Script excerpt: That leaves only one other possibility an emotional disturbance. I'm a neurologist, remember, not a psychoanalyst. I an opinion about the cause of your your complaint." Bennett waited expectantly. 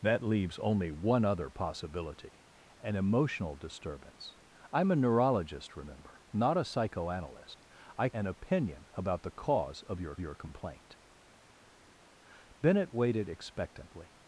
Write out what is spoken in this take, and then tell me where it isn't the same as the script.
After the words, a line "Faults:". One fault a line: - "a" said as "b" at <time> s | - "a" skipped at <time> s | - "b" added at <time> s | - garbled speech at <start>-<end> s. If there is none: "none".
That leaves only one other possibility an emotional disturbance. I'm a neurologist, remember, not a psychoanalyst. I an opinion about the cause of your your complaint." Bennett waited expectantly.
Faults:
none